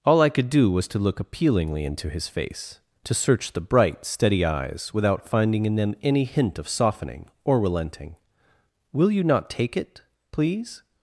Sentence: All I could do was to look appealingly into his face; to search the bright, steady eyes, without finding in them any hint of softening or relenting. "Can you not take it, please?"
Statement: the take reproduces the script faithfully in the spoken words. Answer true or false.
false